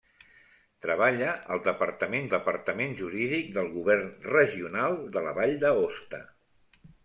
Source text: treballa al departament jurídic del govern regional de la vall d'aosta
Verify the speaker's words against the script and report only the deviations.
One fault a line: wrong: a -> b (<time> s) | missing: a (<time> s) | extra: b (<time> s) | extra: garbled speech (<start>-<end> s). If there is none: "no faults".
extra: departament (2.3 s)